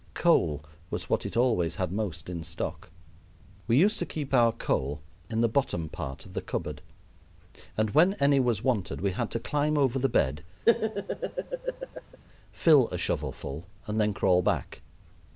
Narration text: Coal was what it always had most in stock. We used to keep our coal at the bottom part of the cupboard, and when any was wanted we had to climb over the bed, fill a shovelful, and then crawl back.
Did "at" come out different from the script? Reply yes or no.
yes